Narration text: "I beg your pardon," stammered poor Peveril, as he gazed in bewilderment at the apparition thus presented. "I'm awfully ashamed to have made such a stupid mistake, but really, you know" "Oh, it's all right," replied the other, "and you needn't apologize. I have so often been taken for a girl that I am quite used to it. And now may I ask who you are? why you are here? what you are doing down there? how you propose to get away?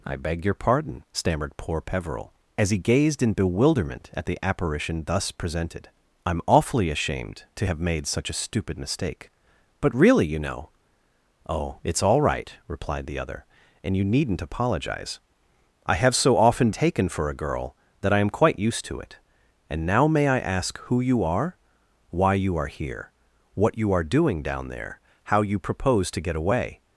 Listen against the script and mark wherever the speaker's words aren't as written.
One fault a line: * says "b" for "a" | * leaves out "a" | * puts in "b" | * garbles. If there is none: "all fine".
* leaves out "been"